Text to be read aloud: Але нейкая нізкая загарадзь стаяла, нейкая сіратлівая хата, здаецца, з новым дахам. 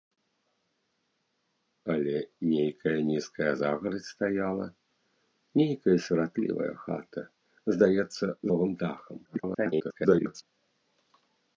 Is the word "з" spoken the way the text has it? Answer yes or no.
no